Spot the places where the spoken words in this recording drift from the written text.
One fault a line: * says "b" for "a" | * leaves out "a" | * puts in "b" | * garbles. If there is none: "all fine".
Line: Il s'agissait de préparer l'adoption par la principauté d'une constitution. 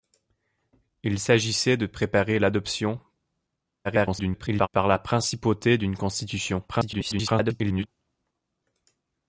* garbles
* garbles